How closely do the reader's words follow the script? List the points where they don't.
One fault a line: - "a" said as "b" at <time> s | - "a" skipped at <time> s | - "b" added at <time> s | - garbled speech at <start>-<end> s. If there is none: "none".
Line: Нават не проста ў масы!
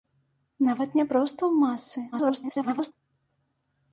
- garbled speech at 2.1-2.9 s